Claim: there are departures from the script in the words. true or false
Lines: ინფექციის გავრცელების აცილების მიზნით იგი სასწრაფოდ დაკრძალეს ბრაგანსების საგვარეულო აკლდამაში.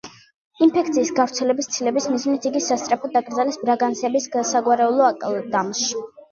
false